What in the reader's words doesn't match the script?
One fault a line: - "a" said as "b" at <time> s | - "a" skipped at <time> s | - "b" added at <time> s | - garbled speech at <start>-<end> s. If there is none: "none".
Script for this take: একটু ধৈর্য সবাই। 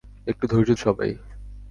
none